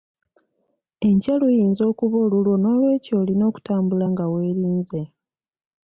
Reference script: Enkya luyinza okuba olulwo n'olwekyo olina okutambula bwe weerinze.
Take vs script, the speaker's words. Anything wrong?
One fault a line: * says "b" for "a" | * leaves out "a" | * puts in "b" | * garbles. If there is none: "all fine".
* says "nga" for "bwe"